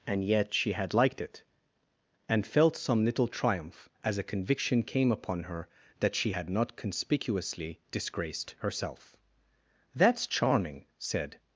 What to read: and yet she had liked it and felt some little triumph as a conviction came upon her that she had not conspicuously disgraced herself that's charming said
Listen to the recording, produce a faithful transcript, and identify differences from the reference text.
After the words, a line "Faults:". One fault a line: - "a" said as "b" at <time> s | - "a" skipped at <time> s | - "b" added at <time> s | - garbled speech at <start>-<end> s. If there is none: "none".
and yet she had liked it and felt some little triumph as a conviction came upon her that she had not conspicuously disgraced herself that's charming said
Faults:
none